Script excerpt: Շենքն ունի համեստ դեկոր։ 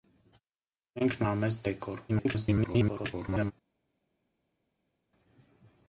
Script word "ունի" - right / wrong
wrong